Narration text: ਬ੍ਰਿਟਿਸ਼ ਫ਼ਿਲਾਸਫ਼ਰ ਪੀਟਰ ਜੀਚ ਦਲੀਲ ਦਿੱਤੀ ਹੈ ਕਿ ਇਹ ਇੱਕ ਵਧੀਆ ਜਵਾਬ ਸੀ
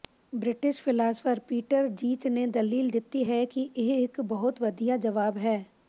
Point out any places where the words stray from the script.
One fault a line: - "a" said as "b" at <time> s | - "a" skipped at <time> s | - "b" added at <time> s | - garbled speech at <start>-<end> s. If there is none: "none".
- "ਨੇ" added at 2.3 s
- "ਬਹੁਤ" added at 4.2 s
- "ਸੀ" said as "ਹੈ" at 5.4 s